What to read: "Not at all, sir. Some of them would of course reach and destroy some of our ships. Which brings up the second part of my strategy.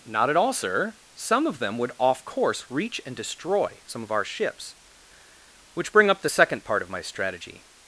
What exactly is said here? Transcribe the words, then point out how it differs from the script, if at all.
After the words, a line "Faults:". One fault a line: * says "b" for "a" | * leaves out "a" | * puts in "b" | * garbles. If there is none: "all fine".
"Not at all, sir. Some of them would off course reach and destroy some of our ships. Which bring up the second part of my strategy.
Faults:
* says "off" for "of"
* says "bring" for "brings"